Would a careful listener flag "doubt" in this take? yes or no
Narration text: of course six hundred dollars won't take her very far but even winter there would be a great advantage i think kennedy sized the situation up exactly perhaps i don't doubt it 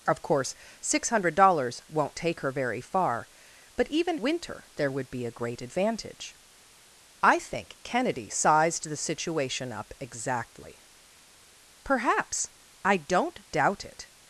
no